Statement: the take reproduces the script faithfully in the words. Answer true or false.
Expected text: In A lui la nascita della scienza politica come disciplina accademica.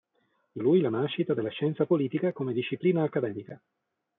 true